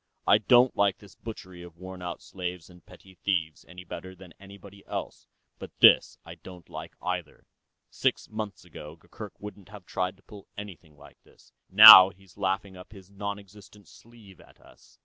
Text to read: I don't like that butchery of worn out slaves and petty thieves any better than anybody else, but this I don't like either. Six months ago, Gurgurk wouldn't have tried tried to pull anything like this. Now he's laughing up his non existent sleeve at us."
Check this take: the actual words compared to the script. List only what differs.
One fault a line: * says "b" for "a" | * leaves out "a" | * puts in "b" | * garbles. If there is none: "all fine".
* says "this" for "that"
* leaves out "tried"